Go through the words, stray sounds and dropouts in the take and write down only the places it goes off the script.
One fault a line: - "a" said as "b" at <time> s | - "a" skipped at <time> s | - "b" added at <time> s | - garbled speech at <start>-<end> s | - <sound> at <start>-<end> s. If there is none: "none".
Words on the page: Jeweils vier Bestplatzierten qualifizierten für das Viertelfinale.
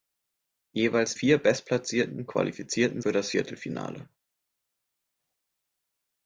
none